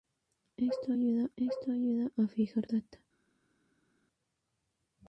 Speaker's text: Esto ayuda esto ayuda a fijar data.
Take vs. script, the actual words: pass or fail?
pass